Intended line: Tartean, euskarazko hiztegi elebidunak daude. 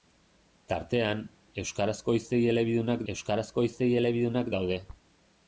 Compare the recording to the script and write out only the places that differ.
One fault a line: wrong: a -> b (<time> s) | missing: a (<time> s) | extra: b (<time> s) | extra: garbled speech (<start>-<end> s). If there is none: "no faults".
extra: euskarazko hiztegi elebidunak (3.1 s)